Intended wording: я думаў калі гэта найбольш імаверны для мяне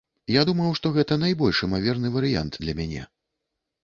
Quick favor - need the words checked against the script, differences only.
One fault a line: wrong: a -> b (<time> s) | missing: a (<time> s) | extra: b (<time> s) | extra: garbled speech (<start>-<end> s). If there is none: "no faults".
wrong: калі -> што (0.8 s)
extra: варыянт (2.1 s)